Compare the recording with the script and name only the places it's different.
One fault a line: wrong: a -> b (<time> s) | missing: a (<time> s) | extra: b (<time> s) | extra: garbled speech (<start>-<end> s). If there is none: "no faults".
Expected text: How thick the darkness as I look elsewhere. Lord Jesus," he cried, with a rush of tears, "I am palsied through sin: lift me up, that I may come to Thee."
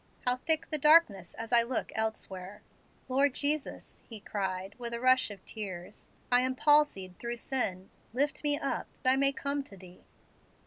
missing: that (8.9 s)